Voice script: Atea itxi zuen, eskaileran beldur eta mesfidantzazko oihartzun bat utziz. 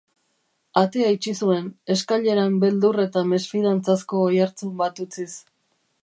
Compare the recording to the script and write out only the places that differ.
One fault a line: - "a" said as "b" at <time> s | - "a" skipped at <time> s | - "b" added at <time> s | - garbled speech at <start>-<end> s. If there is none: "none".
none